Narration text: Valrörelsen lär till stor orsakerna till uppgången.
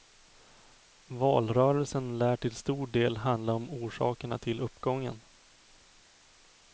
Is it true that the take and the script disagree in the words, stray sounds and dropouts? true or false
true